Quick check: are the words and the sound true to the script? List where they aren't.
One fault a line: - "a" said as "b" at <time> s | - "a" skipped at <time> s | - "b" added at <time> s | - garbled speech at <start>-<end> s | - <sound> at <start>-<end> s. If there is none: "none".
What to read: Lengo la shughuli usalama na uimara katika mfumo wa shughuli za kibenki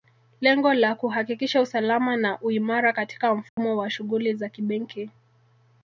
- "shughuli" said as "kuhakikisha" at 0.9 s
- dropout at 3.5-3.6 s